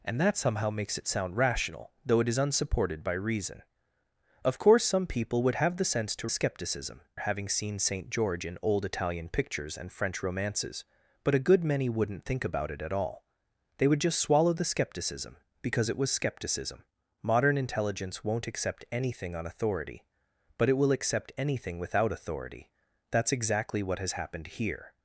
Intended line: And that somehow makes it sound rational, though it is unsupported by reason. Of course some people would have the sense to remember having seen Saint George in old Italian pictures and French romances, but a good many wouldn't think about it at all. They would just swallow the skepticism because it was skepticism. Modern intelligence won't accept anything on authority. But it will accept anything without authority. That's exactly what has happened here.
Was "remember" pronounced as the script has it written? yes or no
no